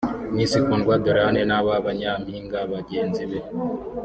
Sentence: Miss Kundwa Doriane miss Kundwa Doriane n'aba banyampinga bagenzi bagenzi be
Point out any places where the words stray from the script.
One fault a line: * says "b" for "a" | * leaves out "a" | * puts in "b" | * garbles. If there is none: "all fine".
* leaves out "miss Kundwa Doriane"
* leaves out "bagenzi"